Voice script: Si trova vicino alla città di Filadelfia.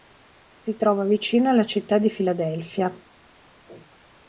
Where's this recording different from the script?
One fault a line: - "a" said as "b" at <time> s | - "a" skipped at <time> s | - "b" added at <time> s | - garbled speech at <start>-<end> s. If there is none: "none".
none